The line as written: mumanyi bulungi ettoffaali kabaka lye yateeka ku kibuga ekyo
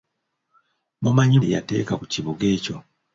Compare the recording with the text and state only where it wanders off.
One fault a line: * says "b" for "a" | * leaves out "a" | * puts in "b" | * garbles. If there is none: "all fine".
* leaves out "bulungi ettoffaali kabaka"